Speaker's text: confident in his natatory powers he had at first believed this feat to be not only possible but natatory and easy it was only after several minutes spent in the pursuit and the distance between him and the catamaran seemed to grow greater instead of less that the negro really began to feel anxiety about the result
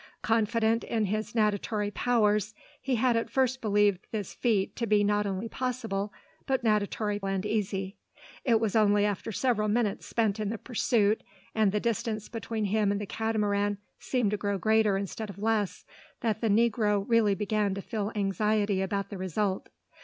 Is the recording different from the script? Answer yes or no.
no